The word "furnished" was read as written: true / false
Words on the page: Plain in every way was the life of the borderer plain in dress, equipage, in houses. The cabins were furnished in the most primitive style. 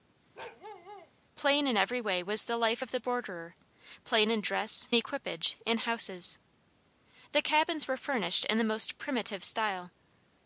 true